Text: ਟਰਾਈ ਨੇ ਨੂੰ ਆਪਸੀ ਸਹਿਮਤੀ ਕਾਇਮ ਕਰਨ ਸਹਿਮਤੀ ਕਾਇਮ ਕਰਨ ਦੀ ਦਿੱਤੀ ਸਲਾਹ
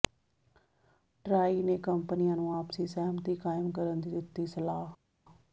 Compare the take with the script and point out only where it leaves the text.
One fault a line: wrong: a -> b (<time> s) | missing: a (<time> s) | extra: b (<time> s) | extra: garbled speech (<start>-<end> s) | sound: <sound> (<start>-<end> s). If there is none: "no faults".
extra: ਕੰਪਨੀਆਂ (1.8 s)
missing: ਸਹਿਮਤੀ ਕਾਇਮ ਕਰਨ (4.0 s)